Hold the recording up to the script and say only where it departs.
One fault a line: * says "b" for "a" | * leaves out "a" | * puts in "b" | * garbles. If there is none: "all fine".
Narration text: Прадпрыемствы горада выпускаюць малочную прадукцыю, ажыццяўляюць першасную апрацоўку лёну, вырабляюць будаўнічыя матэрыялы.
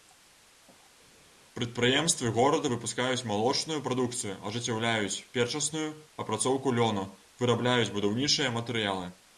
all fine